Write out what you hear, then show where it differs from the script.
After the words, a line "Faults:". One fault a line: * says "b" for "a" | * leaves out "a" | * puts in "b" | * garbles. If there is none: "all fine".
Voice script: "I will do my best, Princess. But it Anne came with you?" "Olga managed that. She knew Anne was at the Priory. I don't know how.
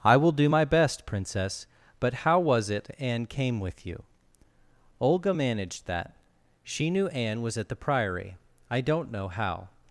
"I will do my best, Princess. But how was it Anne came with you?" "Olga managed that. She knew Anne was at the Priory. I don't know how.
Faults:
* puts in "how was"